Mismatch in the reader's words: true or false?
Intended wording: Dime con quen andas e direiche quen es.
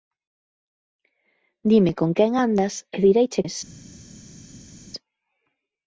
true